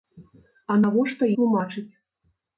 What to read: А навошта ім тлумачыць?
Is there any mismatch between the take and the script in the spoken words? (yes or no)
yes